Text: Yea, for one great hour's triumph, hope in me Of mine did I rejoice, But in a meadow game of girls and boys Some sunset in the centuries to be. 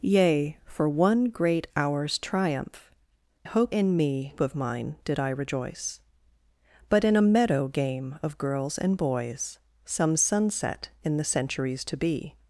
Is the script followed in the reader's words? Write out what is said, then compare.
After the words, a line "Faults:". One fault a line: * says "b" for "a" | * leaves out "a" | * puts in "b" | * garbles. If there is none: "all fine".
Yea, for one great hour's triumph, hope in me Of mine did I rejoice, But in a meadow game of girls and boys Some sunset in the centuries to be.
Faults:
all fine